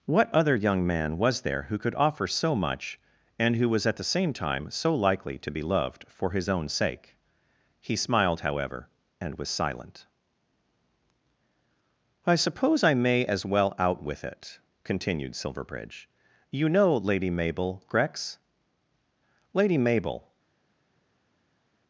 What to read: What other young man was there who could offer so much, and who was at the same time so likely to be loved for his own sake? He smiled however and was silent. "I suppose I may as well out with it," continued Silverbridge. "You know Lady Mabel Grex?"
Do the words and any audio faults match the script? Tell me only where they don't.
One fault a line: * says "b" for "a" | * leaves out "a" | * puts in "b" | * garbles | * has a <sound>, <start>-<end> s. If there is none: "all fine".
* puts in "Lady Mabel"